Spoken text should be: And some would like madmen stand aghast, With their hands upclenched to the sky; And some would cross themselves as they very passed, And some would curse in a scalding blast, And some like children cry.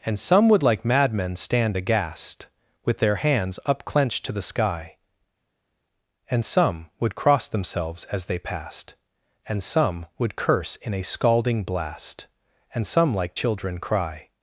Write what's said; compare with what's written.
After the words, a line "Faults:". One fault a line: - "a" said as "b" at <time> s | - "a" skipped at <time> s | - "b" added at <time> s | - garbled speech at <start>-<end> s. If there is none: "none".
And some would like madmen stand aghast, With their hands upclenched to the sky; And some would cross themselves as they passed, And some would curse in a scalding blast, And some like children cry.
Faults:
- "very" skipped at 8.4 s